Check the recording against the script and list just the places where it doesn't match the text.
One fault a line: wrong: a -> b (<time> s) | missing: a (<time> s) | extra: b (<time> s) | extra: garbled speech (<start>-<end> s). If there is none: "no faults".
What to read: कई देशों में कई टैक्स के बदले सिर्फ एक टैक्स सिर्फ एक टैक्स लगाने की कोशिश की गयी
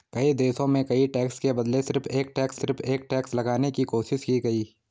no faults